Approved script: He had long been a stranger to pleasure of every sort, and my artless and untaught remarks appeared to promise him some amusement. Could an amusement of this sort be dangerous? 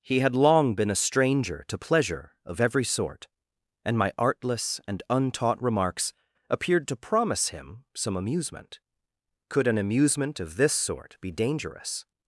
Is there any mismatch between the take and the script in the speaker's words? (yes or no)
no